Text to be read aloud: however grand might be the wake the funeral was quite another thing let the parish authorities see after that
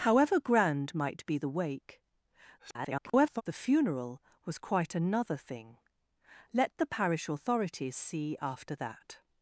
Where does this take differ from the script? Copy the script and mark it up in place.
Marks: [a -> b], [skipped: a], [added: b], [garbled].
however grand might be the wake [garbled] the funeral was quite another thing let the parish authorities see after that